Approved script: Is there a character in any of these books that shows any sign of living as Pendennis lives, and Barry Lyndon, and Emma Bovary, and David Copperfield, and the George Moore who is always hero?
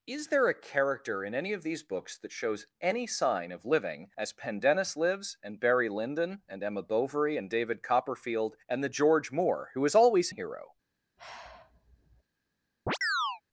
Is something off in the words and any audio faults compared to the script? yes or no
yes